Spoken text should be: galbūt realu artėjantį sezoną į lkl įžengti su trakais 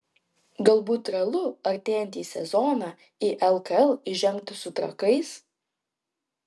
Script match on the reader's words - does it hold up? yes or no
yes